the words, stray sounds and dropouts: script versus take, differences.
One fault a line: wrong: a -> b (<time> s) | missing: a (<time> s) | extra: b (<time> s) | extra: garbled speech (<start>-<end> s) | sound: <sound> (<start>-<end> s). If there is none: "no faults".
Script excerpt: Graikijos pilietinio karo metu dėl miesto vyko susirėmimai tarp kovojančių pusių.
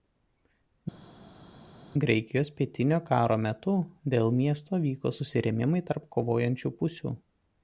no faults